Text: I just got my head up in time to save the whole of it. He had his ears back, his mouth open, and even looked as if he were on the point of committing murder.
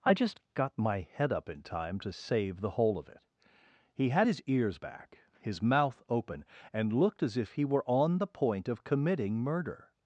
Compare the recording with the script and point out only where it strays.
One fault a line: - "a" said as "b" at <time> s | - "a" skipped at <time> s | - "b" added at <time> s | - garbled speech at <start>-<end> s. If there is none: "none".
- "even" skipped at 6.9 s